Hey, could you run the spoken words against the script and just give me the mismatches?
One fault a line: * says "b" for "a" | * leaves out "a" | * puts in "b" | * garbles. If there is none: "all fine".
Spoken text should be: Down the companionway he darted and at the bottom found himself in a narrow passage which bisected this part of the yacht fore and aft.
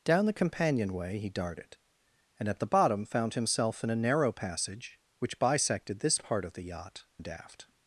* leaves out "fore"